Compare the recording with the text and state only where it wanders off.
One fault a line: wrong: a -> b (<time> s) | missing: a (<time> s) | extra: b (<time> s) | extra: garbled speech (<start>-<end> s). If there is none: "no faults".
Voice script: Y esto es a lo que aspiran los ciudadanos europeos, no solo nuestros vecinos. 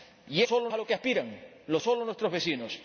wrong: esto -> solo (0.4 s)
missing: ciudadanos europeos no (1.8 s)